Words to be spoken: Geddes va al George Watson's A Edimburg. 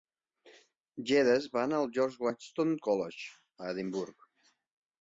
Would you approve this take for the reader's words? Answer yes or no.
no